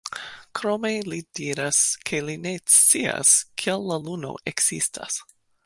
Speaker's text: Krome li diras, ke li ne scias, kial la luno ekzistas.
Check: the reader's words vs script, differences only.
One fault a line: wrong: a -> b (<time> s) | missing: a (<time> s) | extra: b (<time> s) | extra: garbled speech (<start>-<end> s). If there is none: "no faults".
no faults